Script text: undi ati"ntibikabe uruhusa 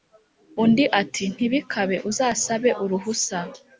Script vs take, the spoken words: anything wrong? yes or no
yes